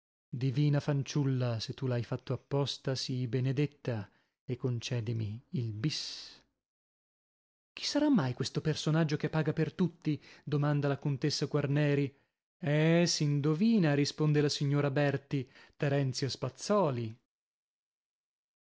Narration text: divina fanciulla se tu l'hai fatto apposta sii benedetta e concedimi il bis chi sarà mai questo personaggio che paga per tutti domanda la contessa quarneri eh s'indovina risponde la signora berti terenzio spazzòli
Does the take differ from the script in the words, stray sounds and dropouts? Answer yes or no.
no